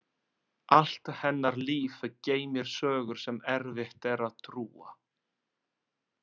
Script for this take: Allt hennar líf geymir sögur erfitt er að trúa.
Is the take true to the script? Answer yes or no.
no